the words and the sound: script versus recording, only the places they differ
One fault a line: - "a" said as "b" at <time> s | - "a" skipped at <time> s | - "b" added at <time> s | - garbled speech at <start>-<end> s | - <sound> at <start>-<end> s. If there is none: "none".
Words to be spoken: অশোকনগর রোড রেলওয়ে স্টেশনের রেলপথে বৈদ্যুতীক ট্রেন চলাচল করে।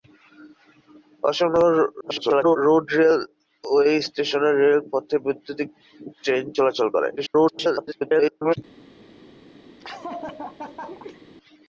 - garbled speech at 2.0-2.6 s
- garbled speech at 7.2-8.6 s
- laugh at 9.8-11.2 s